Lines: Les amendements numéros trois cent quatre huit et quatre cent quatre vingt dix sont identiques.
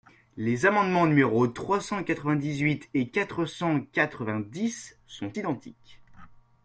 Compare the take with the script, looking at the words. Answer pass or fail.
fail